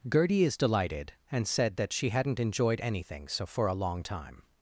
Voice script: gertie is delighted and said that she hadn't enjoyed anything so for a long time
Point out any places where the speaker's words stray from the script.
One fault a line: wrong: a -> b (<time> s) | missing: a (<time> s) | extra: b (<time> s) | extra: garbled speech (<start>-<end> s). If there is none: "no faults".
no faults